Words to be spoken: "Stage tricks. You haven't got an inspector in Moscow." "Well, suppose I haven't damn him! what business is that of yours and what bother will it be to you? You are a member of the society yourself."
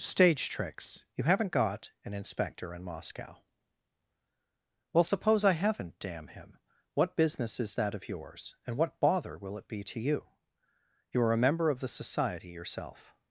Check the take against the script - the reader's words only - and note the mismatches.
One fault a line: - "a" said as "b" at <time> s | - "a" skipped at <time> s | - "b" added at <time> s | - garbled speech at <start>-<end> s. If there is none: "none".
none